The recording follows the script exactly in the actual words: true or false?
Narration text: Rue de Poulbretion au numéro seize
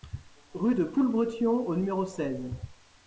true